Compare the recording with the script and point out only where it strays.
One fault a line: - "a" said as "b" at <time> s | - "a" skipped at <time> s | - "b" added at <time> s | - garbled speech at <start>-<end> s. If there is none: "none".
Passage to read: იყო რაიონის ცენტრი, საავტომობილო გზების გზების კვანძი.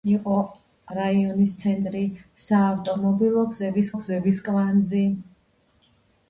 none